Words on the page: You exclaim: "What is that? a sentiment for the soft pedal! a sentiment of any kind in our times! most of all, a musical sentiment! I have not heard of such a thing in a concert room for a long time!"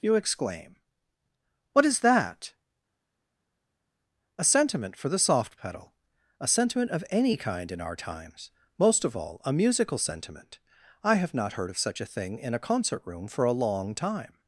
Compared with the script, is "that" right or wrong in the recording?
right